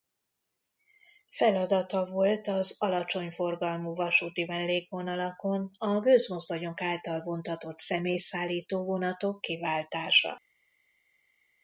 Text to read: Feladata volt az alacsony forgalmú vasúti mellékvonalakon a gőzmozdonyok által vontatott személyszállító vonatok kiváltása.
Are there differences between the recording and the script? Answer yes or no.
no